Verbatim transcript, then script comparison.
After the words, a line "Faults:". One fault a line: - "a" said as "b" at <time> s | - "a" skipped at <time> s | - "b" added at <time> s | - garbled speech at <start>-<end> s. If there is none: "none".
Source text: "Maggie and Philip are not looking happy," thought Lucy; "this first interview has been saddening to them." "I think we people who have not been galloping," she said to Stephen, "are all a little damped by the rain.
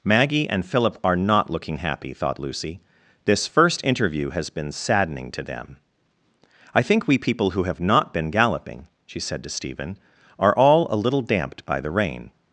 "Maggie and Philip are not looking happy," thought Lucy; "this first interview has been saddening to them." "I think we people who have not been galloping," she said to Stephen, "are all a little damped by the rain.
Faults:
none